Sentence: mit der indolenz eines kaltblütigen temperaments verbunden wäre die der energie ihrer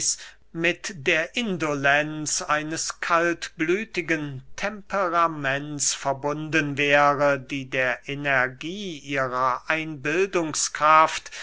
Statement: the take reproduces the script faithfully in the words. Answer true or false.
true